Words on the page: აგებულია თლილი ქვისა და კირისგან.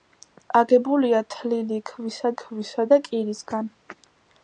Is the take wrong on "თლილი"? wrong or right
right